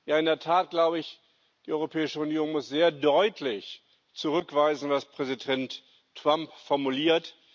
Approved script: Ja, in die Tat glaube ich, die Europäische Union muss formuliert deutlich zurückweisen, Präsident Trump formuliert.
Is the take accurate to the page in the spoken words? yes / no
no